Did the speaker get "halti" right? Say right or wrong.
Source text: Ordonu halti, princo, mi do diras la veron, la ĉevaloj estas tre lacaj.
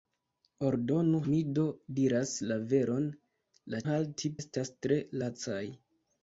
wrong